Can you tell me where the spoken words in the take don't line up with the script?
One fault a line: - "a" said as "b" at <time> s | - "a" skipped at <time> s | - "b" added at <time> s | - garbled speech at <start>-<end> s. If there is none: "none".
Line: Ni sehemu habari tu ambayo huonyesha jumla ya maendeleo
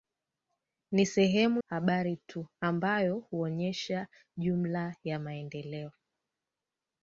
none